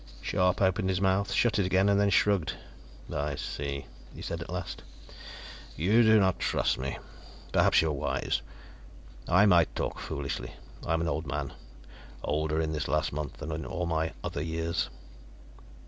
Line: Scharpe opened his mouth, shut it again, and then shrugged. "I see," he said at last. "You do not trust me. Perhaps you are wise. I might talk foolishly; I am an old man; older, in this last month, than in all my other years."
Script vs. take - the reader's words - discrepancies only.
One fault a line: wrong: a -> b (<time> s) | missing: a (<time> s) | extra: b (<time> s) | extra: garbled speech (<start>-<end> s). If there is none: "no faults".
no faults